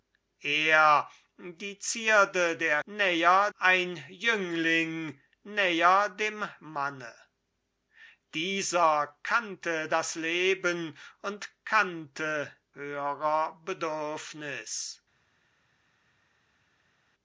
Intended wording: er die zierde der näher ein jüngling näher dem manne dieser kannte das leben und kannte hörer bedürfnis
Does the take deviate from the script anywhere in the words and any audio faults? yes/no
no